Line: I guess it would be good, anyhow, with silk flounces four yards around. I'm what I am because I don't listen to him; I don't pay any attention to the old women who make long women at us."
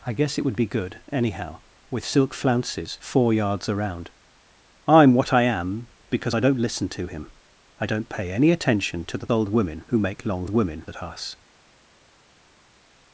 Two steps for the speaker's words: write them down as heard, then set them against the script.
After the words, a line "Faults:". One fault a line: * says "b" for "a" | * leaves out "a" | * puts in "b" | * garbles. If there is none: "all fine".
I guess it would be good, anyhow, with silk flounces four yards around. I'm what I am because I don't listen to him; I don't pay any attention to the old women who make long women at us."
Faults:
all fine